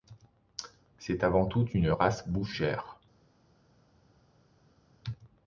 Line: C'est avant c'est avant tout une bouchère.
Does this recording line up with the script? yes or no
no